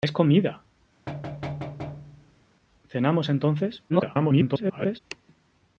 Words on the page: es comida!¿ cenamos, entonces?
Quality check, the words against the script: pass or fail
fail